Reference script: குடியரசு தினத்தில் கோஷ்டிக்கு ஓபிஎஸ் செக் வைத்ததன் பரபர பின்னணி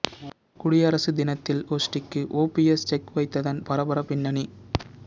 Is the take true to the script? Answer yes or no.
yes